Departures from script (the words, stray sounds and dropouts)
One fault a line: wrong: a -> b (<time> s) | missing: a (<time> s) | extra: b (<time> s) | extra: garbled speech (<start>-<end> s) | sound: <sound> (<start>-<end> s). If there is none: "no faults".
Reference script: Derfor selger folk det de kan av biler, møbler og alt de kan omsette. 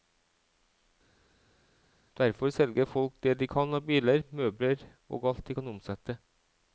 no faults